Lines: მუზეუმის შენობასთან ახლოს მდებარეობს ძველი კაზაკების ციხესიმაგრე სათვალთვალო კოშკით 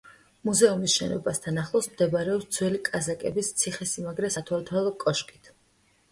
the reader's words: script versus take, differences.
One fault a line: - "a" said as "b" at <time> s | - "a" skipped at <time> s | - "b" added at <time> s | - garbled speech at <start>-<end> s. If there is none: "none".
none